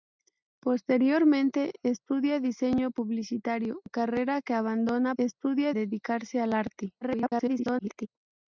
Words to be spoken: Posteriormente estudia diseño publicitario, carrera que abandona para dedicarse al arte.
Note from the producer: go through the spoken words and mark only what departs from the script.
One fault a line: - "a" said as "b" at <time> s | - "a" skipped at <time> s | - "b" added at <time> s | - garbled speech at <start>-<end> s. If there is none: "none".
- "para" said as "estudia" at 5.2 s
- garbled speech at 7.0-8.1 s